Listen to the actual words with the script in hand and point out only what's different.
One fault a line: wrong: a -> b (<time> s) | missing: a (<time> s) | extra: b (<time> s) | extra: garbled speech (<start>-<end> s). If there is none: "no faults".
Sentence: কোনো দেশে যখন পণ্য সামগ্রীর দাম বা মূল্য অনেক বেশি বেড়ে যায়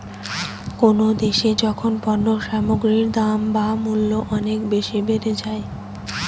no faults